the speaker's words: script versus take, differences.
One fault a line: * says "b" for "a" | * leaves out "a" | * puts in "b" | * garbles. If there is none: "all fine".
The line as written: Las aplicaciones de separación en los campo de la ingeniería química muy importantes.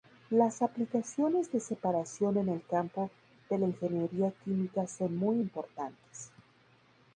* says "el" for "los"
* puts in "son"